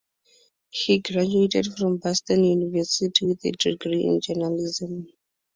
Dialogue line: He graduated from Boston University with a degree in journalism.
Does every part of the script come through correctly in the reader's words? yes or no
yes